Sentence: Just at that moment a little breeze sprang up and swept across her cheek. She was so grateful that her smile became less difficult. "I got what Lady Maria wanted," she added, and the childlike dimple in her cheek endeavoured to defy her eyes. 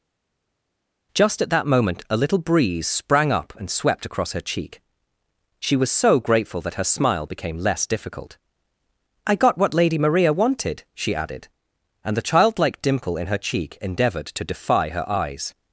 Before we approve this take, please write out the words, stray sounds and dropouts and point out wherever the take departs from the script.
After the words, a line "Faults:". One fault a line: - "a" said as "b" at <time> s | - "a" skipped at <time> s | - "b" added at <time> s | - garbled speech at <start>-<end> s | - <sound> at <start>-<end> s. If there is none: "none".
Just at that moment a little breeze sprang up and swept across her cheek. She was so grateful that her smile became less difficult. "I got what Lady Maria wanted," she added, and the childlike dimple in her cheek endeavoured to defy her eyes.
Faults:
none